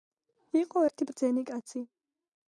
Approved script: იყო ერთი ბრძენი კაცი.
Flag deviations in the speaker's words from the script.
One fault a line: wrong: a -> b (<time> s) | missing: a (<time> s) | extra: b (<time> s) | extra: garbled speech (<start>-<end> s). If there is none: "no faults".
no faults